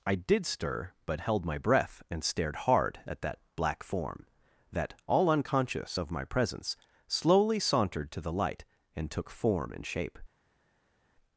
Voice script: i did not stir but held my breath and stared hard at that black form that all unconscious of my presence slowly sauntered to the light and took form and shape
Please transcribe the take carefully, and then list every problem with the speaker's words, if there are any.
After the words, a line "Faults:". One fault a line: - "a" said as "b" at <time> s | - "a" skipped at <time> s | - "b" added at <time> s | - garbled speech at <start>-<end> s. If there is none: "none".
i did stir but held my breath and stared hard at that black form that all unconscious of my presence slowly sauntered to the light and took form and shape
Faults:
- "not" skipped at 0.5 s